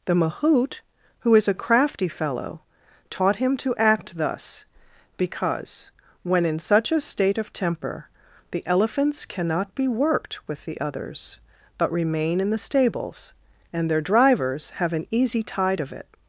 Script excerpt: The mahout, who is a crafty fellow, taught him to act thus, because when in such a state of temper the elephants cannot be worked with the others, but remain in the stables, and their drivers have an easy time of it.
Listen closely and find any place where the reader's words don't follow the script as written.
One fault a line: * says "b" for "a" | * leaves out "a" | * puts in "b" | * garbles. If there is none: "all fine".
* says "tide" for "time"